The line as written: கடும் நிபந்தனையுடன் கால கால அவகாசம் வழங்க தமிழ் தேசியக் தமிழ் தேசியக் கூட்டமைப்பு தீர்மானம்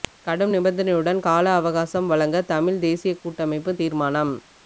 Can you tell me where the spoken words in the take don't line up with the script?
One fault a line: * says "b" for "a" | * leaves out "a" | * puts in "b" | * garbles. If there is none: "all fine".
* leaves out "கால"
* leaves out "தமிழ் தேசியக்"